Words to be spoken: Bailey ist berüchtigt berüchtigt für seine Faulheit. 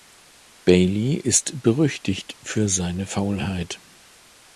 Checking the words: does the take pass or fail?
fail